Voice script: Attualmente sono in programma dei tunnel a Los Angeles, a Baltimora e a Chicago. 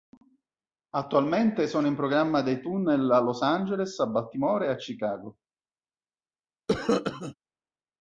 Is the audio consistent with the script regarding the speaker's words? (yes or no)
yes